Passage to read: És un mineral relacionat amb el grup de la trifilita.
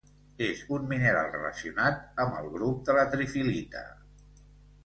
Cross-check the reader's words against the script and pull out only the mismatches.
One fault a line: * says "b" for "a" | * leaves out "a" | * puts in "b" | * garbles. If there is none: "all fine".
all fine